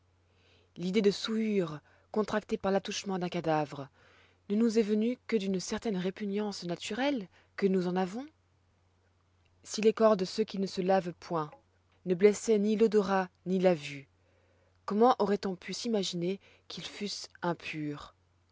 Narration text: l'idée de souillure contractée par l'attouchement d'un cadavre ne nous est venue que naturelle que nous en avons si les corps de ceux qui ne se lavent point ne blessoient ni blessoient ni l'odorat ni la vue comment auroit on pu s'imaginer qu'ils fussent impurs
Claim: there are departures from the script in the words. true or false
true